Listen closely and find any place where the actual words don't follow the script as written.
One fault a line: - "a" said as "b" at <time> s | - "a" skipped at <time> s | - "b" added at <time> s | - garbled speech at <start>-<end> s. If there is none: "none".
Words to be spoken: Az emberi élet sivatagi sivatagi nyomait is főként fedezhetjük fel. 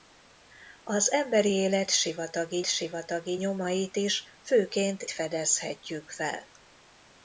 none